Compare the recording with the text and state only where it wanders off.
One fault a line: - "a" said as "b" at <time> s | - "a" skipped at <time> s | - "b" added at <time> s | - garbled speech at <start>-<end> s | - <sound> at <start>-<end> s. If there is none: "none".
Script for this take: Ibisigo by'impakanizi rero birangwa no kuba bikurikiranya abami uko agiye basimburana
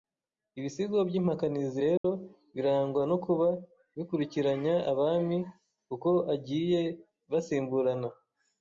- dropout at 2.0-2.0 s